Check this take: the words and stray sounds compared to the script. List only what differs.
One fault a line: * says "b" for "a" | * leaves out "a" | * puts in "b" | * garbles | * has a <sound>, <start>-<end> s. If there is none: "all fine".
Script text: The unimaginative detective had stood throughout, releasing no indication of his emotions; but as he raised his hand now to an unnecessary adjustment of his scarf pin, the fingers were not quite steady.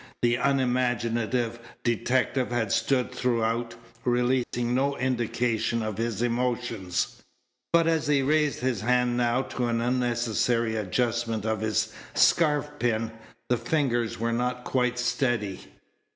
* has a dropout, 4.4-4.5 s